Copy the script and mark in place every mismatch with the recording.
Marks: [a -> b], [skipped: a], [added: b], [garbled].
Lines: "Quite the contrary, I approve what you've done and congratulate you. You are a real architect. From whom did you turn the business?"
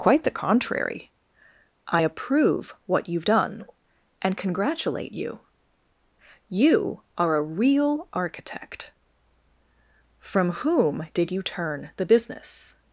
"Quite the contrary, I approve what you've done and congratulate you. You are a real architect. From whom did you turn the business?"